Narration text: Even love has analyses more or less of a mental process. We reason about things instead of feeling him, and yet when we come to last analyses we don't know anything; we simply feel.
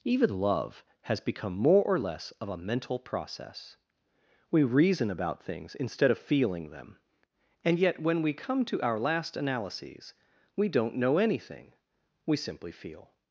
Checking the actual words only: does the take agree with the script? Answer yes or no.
no